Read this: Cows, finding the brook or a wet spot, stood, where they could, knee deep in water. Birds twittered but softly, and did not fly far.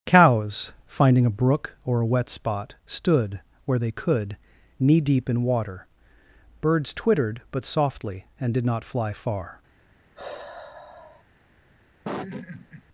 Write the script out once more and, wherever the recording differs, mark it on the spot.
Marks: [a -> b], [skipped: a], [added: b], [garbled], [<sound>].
Cows, finding [the -> a] brook or a wet spot, stood, where they could, knee deep in water. Birds twittered but softly, and did not fly far. [sigh] [laugh]